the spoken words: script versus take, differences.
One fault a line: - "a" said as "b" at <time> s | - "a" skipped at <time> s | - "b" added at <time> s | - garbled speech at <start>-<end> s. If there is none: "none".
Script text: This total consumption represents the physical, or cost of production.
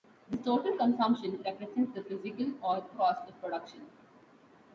none